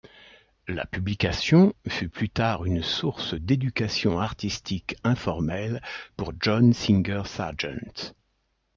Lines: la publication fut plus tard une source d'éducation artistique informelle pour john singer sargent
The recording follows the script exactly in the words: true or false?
true